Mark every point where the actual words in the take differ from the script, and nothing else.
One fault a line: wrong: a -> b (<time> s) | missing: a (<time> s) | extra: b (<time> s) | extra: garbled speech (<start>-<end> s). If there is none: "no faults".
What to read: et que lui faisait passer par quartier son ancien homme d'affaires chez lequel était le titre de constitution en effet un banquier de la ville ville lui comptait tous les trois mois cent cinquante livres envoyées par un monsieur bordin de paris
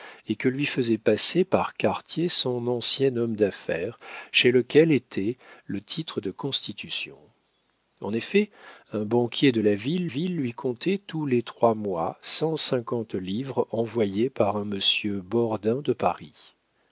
no faults